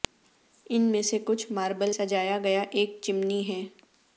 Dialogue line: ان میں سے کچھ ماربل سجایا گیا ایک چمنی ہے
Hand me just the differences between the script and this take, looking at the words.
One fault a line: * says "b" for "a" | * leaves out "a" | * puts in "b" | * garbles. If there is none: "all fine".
all fine